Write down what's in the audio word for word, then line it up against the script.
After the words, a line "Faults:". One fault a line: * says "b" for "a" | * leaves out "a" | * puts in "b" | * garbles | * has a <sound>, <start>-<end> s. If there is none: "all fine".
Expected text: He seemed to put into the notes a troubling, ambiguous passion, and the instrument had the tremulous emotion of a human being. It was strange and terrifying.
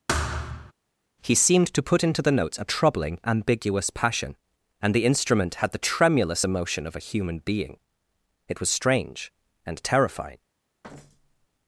He seemed to put into the notes a troubling, ambiguous passion, and the instrument had the tremulous emotion of a human being. It was strange and terrifying.
Faults:
* has a thud, 0.1-0.7 s
* has a thud, 10.8-11.5 s